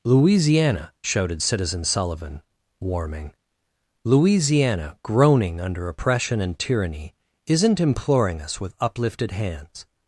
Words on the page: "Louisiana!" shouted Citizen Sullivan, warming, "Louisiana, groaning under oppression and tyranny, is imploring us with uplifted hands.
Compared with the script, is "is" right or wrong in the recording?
wrong